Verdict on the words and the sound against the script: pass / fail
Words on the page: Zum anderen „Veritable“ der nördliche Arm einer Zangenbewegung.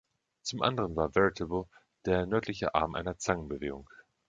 fail